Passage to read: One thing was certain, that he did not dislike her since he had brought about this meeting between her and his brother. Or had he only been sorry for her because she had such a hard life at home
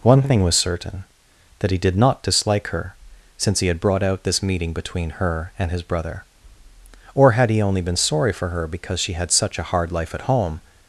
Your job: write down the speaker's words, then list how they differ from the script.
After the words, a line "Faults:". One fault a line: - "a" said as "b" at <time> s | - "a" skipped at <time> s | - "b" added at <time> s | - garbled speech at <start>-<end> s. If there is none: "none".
One thing was certain, that he did not dislike her since he had brought out this meeting between her and his brother. Or had he only been sorry for her because she had such a hard life at home
Faults:
- "about" said as "out" at 4.0 s